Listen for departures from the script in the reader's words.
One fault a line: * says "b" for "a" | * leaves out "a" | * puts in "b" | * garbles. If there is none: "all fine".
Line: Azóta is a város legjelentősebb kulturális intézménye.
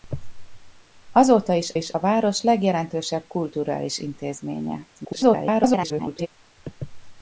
* puts in "is"
* garbles